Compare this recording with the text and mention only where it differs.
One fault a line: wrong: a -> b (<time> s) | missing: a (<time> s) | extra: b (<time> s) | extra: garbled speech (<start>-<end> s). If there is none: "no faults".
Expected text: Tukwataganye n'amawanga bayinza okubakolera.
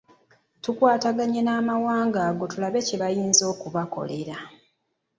extra: ago tulabe kye (2.3 s)